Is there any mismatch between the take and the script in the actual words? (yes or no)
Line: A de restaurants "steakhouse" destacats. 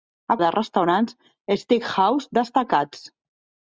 no